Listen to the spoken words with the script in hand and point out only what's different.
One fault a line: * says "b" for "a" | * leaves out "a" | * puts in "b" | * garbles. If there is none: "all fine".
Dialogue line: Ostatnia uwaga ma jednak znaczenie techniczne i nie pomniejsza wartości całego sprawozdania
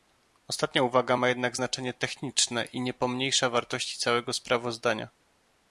all fine